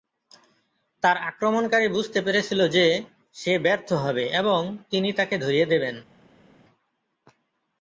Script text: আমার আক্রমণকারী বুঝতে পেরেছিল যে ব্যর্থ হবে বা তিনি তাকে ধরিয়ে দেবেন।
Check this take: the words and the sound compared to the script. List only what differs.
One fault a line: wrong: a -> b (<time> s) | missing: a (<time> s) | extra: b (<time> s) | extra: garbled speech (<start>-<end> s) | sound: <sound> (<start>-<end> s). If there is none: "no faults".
wrong: আমার -> তার (1.0 s)
extra: সে (3.4 s)
wrong: বা -> এবং (4.3 s)